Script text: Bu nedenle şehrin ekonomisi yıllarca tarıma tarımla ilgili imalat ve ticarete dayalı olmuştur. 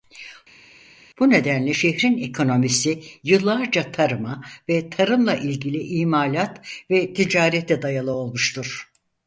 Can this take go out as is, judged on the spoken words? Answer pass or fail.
fail